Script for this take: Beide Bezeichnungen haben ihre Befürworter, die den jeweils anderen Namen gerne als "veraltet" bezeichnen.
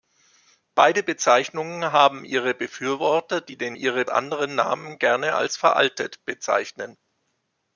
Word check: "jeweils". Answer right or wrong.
wrong